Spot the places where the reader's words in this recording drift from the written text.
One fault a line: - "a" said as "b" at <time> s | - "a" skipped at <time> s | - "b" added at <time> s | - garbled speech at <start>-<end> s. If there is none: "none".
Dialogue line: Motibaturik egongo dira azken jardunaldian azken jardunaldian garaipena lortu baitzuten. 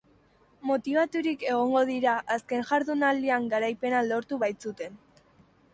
- "azken jardunaldian" skipped at 3.5 s